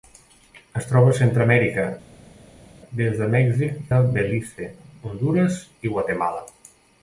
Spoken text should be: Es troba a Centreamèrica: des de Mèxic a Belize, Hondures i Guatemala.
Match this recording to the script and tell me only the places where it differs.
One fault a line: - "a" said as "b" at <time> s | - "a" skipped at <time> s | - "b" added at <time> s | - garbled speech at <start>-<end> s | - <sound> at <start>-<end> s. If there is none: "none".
none